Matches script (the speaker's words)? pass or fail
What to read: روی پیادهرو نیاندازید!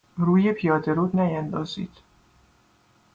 pass